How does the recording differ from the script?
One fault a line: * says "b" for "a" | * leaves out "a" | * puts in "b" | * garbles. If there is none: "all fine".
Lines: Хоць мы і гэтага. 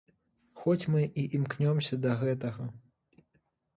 * puts in "імкнёмся да"